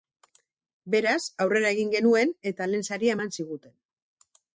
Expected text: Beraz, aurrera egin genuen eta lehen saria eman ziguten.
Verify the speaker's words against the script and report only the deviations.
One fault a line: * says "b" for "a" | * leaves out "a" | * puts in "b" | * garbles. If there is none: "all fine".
all fine